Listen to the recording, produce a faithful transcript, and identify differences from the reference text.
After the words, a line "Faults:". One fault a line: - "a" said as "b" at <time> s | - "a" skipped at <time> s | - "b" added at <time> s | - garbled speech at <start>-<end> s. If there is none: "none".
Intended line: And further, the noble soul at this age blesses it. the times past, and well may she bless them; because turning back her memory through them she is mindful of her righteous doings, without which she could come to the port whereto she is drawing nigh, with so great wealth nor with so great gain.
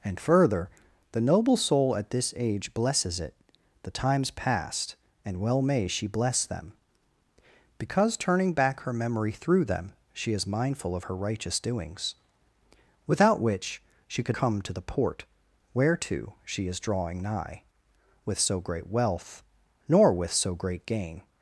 And further, the noble soul at this age blesses it. the times past, and well may she bless them; because turning back her memory through them she is mindful of her righteous doings, without which she could come to the port whereto she is drawing nigh, with so great wealth nor with so great gain.
Faults:
none